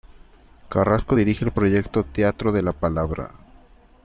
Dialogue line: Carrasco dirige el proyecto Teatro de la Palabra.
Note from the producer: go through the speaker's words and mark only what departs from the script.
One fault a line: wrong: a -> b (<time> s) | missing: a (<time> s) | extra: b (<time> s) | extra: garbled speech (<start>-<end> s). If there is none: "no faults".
no faults